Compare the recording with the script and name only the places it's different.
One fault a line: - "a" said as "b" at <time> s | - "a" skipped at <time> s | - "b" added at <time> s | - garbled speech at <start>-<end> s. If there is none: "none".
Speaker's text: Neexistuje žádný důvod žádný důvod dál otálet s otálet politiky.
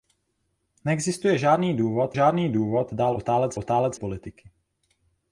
none